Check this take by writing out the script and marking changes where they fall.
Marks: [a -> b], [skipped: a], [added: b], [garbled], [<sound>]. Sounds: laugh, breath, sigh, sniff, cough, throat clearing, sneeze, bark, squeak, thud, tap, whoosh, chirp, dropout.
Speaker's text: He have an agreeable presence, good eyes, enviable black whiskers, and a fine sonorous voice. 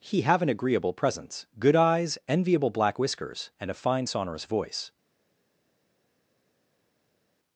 He have an agreeable presence, good eyes, enviable black whiskers, and a fine sonorous voice.